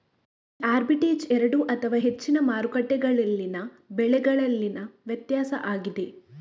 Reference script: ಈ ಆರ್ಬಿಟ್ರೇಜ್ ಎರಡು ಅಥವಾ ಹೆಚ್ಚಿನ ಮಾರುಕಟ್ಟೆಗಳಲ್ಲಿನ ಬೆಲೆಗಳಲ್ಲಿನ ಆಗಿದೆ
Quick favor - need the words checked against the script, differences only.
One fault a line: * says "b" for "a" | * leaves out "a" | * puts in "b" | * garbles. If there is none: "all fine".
* puts in "ವ್ಯತ್ಯಾಸ"